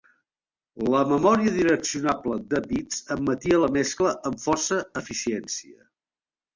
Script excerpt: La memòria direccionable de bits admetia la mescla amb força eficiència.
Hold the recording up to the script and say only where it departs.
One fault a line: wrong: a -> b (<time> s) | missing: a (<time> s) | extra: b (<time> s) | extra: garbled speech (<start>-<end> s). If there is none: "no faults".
no faults